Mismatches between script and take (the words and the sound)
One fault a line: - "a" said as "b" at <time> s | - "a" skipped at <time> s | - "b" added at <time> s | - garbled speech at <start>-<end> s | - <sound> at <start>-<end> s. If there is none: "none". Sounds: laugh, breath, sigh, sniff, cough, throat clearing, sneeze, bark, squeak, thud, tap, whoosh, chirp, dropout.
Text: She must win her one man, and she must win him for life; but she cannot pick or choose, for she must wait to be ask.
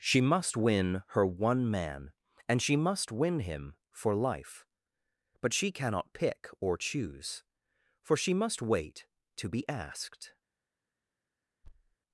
- "ask" said as "asked" at 9.7 s
- thud at 11.6-12.0 s